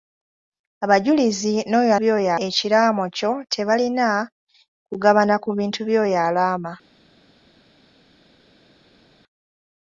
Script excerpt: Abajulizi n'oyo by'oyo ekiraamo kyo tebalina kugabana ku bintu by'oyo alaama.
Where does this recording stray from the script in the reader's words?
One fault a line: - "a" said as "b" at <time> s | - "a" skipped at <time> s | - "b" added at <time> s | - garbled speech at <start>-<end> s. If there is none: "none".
none